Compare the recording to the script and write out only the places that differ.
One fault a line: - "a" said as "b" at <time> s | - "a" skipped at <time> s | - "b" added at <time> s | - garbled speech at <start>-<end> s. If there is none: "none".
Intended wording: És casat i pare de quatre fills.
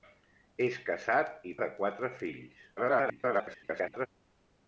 - "pare" skipped at 1.5 s
- garbled speech at 2.8-4.1 s